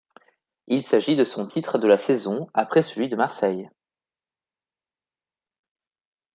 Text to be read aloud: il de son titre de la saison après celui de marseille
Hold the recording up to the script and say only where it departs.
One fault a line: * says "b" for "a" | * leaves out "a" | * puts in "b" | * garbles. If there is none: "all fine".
* puts in "s'agit"